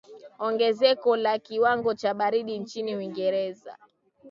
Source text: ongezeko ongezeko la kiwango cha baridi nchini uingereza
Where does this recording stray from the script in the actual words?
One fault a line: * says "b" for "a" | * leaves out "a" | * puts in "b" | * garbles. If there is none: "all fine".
* leaves out "ongezeko"